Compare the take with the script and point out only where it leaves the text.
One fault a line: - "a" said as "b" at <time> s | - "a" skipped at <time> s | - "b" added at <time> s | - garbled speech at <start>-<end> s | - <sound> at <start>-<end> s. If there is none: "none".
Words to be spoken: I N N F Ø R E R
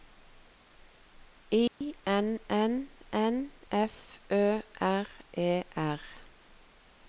- dropout at 1.7-1.8 s
- "N" added at 3.1 s